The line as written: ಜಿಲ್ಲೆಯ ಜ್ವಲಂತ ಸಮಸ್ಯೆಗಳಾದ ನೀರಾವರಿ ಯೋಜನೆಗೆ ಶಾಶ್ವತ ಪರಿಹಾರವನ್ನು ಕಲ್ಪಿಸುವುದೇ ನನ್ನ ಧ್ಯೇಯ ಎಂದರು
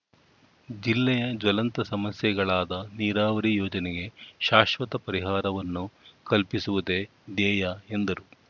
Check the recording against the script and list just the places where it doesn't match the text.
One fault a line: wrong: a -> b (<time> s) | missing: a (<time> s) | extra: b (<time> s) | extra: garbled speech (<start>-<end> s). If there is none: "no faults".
missing: ನನ್ನ (7.0 s)